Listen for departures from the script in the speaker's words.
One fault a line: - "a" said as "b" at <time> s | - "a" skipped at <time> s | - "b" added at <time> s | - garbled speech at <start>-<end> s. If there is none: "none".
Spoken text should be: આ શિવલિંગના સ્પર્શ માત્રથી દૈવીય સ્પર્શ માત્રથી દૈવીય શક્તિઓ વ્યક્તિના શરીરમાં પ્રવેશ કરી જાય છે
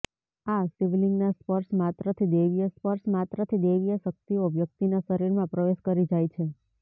none